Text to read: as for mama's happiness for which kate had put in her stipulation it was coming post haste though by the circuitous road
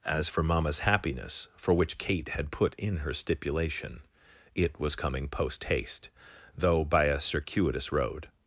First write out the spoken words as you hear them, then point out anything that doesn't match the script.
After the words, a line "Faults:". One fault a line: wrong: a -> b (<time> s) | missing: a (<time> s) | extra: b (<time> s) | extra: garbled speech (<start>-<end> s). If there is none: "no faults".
as for mama's happiness for which kate had put in her stipulation it was coming post haste though by a circuitous road
Faults:
wrong: the -> a (7.1 s)